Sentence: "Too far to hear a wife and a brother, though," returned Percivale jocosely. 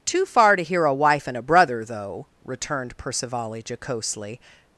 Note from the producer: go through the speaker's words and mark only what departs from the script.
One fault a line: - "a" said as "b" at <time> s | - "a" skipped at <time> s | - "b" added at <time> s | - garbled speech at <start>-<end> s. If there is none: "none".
none